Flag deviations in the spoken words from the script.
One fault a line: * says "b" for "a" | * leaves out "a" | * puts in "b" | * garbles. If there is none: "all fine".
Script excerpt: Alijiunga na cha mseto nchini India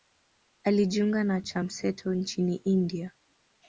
all fine